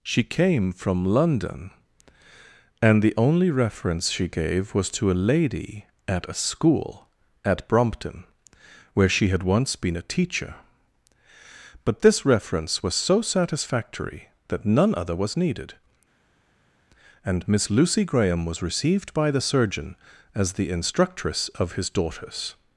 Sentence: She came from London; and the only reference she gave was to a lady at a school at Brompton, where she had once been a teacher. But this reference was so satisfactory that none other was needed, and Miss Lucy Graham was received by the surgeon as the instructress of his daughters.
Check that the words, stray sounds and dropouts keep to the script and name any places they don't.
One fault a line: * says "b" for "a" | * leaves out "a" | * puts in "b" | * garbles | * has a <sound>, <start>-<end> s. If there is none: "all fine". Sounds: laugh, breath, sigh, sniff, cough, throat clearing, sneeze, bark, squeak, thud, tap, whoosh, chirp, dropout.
all fine